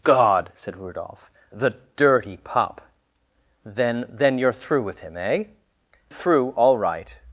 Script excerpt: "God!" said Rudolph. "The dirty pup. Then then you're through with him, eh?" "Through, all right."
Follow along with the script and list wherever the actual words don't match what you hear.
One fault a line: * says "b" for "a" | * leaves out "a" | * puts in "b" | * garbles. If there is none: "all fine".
all fine